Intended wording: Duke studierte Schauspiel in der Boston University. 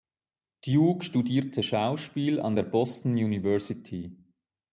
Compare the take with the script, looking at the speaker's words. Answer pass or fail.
fail